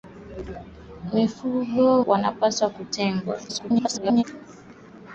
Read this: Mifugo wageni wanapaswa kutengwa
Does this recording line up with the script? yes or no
no